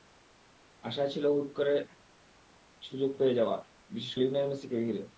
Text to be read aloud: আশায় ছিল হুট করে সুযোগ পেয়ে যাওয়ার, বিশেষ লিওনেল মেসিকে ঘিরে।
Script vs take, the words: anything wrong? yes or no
no